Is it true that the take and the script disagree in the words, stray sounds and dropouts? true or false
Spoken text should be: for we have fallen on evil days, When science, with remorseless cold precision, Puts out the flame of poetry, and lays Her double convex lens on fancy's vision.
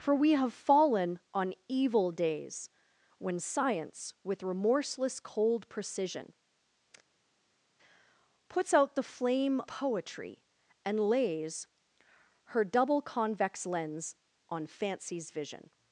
true